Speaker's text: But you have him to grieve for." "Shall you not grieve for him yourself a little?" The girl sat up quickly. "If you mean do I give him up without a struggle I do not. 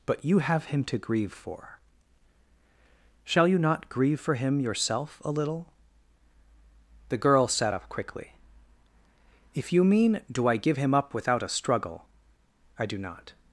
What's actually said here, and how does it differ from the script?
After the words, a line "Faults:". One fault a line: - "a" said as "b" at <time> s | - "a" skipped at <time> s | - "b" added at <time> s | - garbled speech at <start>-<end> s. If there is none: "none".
But you have him to grieve for." "Shall you not grieve for him yourself a little?" The girl sat up quickly. "If you mean do I give him up without a struggle I do not.
Faults:
none